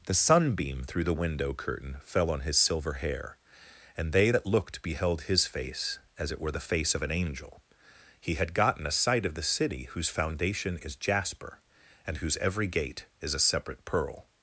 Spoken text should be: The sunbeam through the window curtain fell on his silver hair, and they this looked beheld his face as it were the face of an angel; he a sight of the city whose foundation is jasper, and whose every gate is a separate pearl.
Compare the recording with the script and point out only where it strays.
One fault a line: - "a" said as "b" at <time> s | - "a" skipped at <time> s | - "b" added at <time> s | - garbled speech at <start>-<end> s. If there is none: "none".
- "this" said as "that" at 4.3 s
- "had gotten" added at 8.3 s